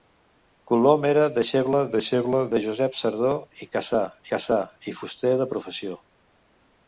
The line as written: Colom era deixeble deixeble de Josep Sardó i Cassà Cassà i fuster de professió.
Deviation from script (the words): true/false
false